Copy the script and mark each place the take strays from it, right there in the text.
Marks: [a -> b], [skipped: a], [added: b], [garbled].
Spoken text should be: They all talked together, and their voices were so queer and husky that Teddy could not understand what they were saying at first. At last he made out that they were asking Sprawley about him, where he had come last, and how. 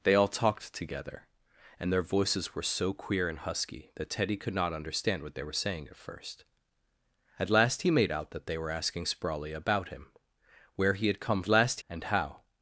They all talked together, and their voices were so queer and husky that Teddy could not understand what they were saying at first. At last he made out that they were asking Sprawley about him, where he had come last, and how.